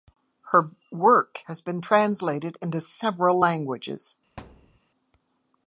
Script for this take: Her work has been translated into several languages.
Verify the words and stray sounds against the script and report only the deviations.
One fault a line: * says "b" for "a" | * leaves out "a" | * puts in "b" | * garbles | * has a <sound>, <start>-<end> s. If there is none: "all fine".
* has a thud, 4.4-4.8 s